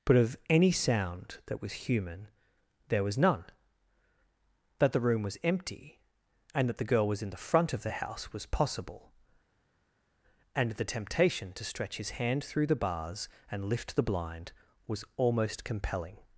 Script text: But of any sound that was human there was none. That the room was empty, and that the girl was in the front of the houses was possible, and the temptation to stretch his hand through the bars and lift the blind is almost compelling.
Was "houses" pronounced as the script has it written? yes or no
no